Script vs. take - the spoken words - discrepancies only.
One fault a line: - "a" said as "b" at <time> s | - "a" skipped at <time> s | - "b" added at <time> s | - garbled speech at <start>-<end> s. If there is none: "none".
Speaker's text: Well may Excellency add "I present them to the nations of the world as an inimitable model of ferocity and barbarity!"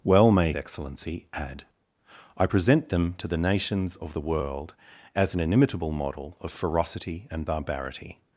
none